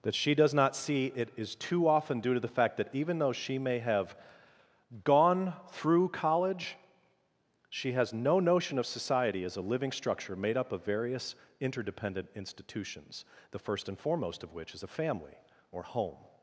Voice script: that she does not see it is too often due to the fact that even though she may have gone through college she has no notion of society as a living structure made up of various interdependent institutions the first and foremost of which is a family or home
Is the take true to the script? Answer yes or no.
yes